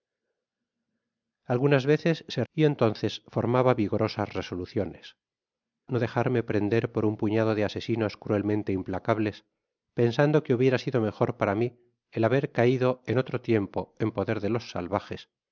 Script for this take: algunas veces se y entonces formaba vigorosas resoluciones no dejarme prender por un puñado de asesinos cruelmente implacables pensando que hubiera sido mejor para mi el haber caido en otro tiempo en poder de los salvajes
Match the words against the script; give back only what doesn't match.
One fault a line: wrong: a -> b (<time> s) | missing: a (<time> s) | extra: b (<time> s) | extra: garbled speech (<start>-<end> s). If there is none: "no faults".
no faults